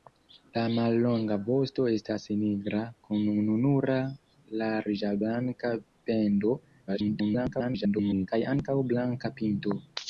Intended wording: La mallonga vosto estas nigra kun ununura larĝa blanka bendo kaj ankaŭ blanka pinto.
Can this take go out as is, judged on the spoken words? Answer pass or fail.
fail